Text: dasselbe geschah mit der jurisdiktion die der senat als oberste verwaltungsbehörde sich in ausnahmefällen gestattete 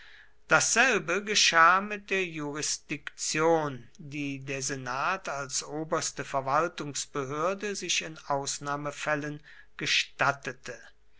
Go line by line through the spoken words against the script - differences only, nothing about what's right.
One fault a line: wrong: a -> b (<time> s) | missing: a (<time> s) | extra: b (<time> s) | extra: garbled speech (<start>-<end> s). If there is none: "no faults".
no faults